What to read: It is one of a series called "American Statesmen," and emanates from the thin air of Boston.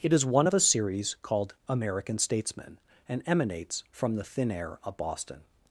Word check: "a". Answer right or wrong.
right